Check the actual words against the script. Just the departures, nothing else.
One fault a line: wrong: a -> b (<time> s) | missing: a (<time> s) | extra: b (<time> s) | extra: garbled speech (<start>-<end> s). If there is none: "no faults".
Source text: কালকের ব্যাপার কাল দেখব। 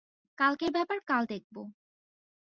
no faults